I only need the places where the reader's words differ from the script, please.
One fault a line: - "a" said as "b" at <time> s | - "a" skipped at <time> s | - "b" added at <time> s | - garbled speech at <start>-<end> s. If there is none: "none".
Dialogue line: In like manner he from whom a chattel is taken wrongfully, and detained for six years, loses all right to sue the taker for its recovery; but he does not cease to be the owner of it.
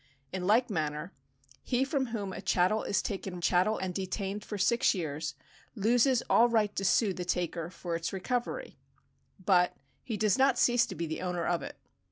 - "wrongfully" said as "chattel" at 3.4 s